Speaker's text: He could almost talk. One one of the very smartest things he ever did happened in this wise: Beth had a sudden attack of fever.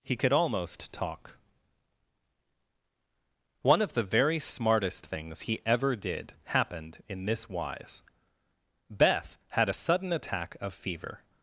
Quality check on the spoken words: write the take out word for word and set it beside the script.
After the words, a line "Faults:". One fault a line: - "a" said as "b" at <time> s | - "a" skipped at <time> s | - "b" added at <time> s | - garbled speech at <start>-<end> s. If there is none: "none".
He could almost talk. One of the very smartest things he ever did happened in this wise: Beth had a sudden attack of fever.
Faults:
- "one" skipped at 3.8 s